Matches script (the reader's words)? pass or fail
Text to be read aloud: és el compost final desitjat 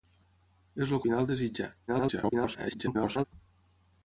fail